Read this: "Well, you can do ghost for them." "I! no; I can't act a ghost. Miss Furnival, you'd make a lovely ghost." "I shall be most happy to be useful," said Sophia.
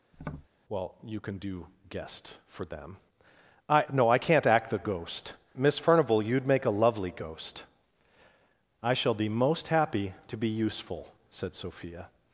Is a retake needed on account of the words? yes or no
yes